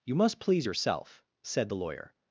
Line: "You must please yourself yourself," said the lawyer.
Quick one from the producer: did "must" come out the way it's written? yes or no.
yes